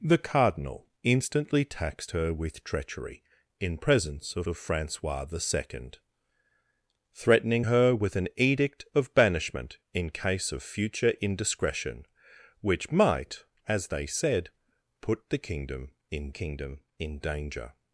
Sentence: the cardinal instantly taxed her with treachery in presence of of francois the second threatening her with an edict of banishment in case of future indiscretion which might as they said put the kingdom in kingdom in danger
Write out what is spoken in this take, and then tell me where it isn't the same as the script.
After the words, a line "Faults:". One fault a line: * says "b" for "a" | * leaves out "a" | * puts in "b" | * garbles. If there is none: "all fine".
the cardinal instantly taxed her with treachery in presence of of francois the second threatening her with an edict of banishment in case of future indiscretion which might as they said put the kingdom in kingdom in danger
Faults:
all fine